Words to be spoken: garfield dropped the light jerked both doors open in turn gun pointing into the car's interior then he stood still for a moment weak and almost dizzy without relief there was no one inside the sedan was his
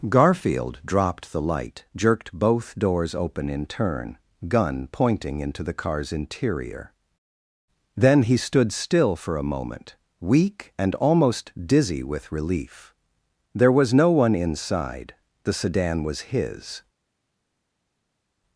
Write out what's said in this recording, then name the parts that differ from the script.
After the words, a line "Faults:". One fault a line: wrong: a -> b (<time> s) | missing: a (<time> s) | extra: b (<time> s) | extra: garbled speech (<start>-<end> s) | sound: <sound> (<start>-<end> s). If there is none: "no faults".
garfield dropped the light jerked both doors open in turn gun pointing into the car's interior then he stood still for a moment weak and almost dizzy with relief there was no one inside the sedan was his
Faults:
wrong: without -> with (12.0 s)